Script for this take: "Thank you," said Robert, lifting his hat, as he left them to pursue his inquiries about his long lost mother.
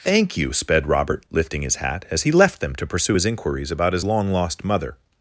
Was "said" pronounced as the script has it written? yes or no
no